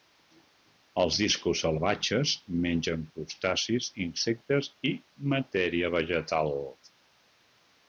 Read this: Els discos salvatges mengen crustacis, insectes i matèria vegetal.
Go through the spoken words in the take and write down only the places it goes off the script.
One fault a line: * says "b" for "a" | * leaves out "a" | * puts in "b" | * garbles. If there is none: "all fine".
all fine